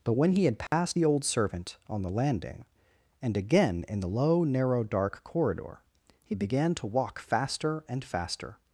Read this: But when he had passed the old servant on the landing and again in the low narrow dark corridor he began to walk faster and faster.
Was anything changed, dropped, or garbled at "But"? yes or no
no